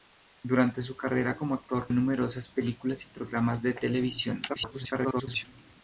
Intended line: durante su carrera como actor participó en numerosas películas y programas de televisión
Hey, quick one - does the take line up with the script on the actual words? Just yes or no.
no